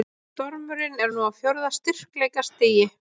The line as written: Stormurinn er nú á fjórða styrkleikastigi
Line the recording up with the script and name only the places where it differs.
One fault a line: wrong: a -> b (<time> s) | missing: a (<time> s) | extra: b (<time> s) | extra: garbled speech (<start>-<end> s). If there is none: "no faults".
no faults